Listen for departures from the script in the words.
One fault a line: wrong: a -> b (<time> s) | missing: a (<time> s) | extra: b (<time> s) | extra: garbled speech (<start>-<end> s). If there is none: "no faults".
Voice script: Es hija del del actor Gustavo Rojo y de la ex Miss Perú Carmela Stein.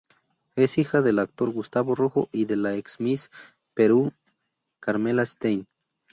missing: del (1.2 s)